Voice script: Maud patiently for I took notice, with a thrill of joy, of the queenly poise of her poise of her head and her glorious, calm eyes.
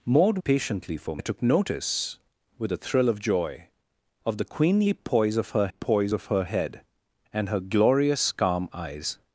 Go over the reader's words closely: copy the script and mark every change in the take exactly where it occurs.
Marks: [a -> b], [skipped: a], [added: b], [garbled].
Maud patiently for I took notice, with a thrill of joy, of the queenly poise of her poise of her head and her glorious, calm eyes.